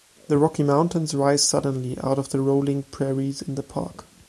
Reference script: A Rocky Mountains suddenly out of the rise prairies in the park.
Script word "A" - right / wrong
wrong